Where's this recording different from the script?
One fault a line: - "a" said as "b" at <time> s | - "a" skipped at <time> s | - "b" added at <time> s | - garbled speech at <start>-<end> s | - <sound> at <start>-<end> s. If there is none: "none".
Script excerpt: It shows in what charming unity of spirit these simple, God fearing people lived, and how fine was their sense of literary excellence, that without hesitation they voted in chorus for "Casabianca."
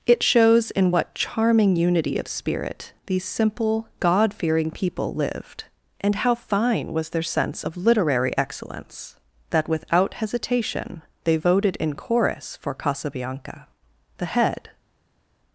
- "The head" added at 14.2 s